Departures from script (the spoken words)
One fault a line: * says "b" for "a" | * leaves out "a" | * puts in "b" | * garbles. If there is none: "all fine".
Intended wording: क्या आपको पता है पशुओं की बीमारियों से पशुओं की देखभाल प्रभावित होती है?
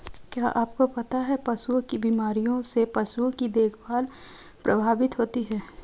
all fine